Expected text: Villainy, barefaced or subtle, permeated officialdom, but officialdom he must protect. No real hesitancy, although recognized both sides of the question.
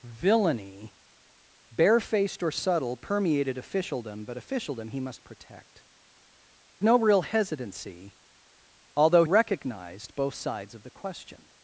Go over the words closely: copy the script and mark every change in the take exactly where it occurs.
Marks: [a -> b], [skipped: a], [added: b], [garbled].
Villainy, barefaced or subtle, permeated officialdom, but officialdom he must protect. No real hesitancy, although recognized both sides of the question.